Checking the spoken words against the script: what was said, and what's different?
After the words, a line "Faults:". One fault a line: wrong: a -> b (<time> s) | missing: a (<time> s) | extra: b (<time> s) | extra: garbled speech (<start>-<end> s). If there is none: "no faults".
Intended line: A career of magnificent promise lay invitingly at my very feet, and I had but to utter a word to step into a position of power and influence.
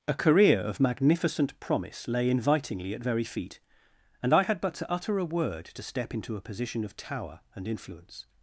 A career of magnificent promise lay invitingly at very feet, and I had but to utter a word to step into a position of tower and influence.
Faults:
missing: my (3.0 s)
wrong: power -> tower (6.9 s)